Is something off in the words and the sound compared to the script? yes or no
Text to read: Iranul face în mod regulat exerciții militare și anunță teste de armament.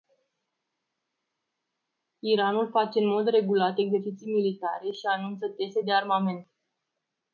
no